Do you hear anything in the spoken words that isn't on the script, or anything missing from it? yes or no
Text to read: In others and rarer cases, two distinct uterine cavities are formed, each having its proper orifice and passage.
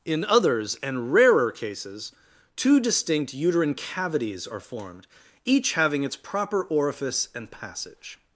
no